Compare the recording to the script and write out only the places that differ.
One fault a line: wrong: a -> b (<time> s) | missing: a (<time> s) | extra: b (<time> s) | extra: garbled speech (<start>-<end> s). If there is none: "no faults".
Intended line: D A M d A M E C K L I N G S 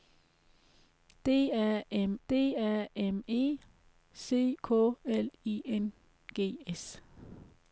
no faults